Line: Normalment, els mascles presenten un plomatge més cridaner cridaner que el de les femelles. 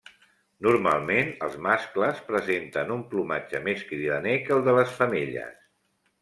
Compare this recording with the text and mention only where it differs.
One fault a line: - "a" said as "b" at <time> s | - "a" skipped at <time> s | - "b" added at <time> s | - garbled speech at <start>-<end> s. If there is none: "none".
- "cridaner" skipped at 4.4 s